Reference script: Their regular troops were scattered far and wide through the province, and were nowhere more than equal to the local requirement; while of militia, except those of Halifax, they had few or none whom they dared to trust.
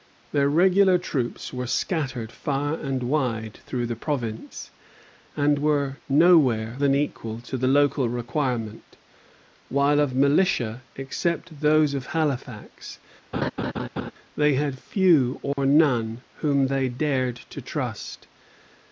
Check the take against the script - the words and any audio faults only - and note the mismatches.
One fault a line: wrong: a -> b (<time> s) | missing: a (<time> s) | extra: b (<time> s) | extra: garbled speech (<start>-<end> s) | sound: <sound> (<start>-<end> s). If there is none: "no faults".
missing: more (6.8 s)
sound: laugh (13.3-14.1 s)
sound: dropout (15.5-15.6 s)